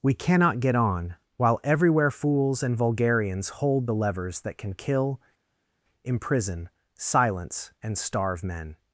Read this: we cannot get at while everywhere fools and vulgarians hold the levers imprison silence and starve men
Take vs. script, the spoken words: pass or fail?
fail